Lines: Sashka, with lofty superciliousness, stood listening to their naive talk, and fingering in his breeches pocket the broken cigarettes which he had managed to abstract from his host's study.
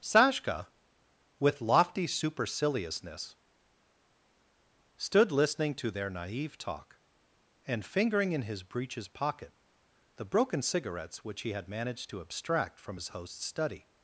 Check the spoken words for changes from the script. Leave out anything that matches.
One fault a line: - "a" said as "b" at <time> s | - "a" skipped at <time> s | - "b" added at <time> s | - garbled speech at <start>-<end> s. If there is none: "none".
none